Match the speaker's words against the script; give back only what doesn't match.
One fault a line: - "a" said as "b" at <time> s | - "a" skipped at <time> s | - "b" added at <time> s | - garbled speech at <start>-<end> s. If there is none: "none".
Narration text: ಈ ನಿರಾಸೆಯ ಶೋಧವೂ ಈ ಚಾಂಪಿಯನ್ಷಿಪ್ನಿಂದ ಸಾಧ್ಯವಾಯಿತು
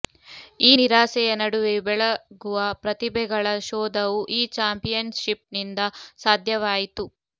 - "ನಡುವೆಯೂ ಬೆಳಗುವ ಪ್ರತಿಭೆಗಳ" added at 1.4 s